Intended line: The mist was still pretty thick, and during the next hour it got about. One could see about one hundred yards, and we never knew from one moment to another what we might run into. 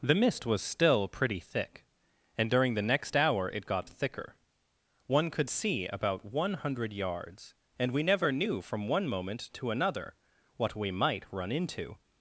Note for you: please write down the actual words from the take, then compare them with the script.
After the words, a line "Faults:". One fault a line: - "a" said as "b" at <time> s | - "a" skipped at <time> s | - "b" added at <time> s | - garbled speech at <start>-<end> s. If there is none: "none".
The mist was still pretty thick, and during the next hour it got thicker. One could see about one hundred yards, and we never knew from one moment to another what we might run into.
Faults:
- "about" said as "thicker" at 3.9 s